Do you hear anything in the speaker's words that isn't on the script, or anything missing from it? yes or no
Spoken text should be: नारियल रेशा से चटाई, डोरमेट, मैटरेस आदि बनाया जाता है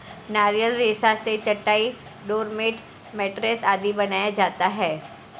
no